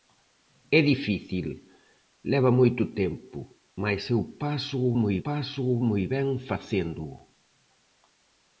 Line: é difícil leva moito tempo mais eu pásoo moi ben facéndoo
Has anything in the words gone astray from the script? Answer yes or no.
yes